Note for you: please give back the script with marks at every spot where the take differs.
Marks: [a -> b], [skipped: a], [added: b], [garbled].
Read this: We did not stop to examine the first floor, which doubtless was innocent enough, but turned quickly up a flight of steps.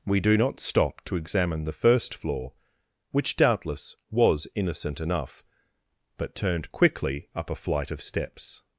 We [did -> do] not stop to examine the first floor, which doubtless was innocent enough, but turned quickly up a flight of steps.